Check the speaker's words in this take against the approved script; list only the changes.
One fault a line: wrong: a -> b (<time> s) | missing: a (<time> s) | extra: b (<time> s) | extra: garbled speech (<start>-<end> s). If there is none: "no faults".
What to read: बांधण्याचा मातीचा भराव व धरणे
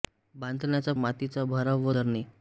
no faults